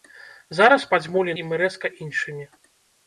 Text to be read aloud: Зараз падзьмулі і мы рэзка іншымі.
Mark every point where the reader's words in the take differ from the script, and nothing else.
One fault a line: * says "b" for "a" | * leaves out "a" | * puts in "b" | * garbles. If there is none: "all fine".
all fine